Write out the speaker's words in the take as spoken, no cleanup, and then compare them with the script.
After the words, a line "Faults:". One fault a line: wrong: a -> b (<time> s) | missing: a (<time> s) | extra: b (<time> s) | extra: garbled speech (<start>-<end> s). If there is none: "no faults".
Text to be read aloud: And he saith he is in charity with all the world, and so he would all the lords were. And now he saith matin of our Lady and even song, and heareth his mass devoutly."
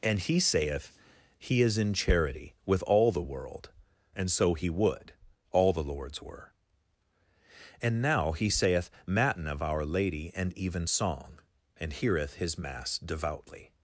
And he saith he is in charity with all the world, and so he would all the lords were. And now he saith matin of our Lady and even song, and heareth his mass devoutly."
Faults:
no faults